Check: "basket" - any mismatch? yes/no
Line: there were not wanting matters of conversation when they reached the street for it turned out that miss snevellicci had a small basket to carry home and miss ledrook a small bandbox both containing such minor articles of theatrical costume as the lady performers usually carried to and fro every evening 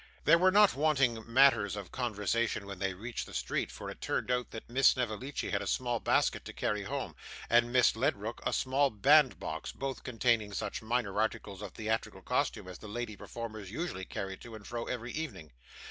no